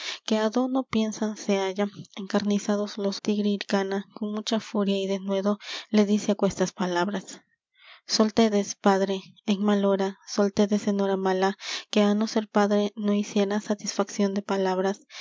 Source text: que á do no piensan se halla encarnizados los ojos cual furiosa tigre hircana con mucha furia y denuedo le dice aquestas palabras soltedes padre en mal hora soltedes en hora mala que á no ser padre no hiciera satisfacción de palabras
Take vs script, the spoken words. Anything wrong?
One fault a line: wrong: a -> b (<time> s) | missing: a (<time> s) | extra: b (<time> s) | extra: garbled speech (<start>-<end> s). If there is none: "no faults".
missing: ojos cual furiosa (3.2 s)